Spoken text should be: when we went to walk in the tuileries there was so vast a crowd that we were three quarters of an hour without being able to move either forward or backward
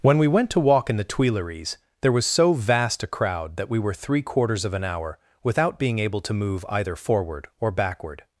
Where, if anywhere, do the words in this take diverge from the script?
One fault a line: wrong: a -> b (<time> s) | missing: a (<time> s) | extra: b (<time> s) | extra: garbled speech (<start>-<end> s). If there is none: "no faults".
no faults